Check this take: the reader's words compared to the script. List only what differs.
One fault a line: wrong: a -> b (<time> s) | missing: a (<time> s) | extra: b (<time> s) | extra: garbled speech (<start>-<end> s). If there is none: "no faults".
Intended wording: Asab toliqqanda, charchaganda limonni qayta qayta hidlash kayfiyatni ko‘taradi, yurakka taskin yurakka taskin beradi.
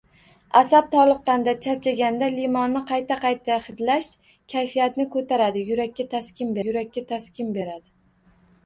no faults